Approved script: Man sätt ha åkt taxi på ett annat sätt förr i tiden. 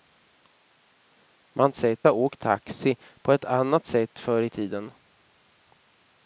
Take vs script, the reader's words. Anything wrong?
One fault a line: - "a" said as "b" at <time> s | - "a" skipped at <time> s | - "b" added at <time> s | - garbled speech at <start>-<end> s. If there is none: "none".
none